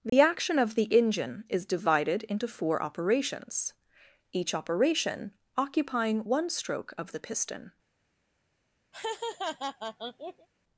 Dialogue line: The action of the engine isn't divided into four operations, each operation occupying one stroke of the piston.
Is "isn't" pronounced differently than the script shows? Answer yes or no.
yes